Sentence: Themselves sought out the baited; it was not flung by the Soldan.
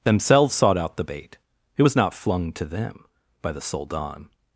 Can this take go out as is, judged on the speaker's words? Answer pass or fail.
fail